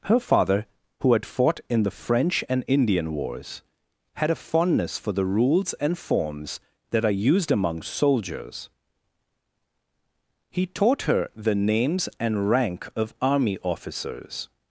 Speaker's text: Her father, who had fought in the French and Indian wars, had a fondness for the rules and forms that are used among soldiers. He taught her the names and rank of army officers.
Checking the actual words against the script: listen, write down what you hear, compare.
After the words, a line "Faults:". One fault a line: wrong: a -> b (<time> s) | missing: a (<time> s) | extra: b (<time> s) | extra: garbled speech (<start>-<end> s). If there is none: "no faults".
Her father, who had fought in the French and Indian wars, had a fondness for the rules and forms that are used among soldiers. He taught her the names and rank of army officers.
Faults:
no faults